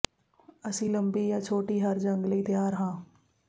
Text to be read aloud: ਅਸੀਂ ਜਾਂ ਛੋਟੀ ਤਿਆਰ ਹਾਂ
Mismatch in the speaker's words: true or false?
true